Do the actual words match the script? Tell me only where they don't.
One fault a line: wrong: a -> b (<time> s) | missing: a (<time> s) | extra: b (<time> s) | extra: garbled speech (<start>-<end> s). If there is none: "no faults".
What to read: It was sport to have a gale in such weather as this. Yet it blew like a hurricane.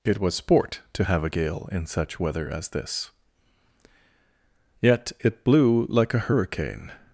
no faults